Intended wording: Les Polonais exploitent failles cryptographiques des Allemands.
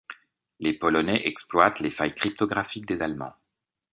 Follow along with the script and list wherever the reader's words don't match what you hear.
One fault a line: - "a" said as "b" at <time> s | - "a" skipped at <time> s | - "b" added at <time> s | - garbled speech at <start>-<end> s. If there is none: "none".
- "les" added at 1.8 s